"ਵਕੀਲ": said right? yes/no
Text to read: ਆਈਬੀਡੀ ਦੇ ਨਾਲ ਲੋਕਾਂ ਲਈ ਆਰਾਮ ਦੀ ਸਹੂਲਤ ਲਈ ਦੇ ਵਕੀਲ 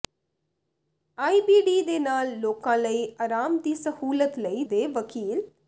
yes